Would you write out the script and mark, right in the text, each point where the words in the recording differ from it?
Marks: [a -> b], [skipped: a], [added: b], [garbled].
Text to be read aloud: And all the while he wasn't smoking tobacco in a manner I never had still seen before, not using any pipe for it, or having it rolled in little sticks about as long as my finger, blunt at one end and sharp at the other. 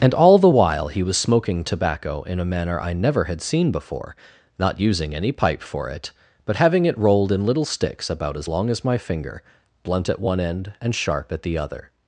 And all the while he [wasn't -> was] smoking tobacco in a manner I never had [skipped: still] seen before, not using any pipe for it, [or -> but] having it rolled in little sticks about as long as my finger, blunt at one end and sharp at the other.